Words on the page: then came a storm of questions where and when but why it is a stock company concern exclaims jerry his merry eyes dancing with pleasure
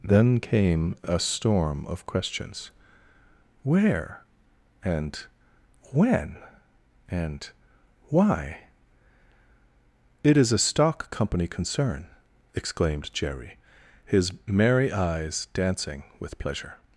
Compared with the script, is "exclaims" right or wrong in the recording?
wrong